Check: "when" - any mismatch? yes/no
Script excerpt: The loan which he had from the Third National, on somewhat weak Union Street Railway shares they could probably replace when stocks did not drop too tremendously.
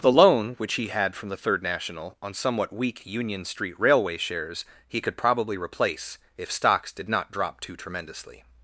yes